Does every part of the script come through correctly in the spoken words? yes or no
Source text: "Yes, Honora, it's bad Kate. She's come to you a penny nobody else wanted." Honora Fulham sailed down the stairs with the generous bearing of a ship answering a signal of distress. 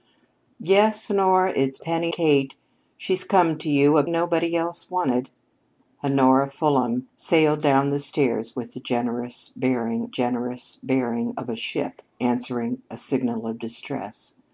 no